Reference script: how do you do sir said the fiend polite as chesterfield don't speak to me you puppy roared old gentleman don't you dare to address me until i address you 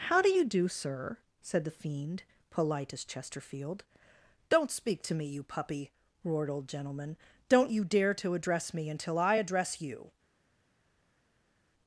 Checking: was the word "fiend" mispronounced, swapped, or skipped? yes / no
no